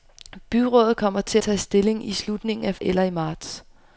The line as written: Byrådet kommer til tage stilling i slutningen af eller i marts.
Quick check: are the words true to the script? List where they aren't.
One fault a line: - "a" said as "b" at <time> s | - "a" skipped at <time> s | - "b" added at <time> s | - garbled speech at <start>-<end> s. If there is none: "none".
none